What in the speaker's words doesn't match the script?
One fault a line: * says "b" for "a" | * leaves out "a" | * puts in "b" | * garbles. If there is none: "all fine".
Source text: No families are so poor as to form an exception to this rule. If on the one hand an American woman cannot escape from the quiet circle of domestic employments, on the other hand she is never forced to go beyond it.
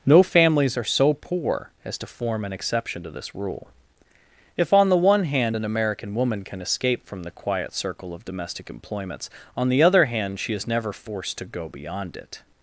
* says "can" for "cannot"